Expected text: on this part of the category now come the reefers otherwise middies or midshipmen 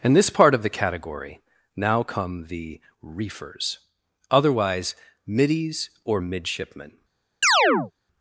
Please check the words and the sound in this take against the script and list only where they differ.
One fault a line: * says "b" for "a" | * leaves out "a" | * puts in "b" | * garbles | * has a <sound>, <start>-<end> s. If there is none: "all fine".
* says "in" for "on"
* has a chirp, 7.4-7.9 s